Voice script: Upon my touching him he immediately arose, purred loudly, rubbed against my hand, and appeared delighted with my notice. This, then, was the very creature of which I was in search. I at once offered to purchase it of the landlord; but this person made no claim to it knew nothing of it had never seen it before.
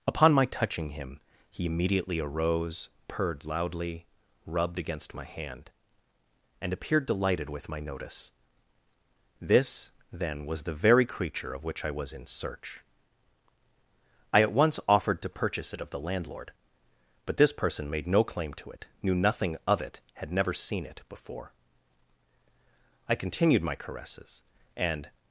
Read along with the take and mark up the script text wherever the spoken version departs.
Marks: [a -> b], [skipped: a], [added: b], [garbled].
Upon my touching him he immediately arose, purred loudly, rubbed against my hand, and appeared delighted with my notice. This, then, was the very creature of which I was in search. I at once offered to purchase it of the landlord; but this person made no claim to it knew nothing of it had never seen it before. [added: I continued my caresses and]